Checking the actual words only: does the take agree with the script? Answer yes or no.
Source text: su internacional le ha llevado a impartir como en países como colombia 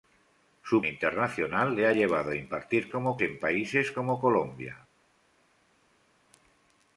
yes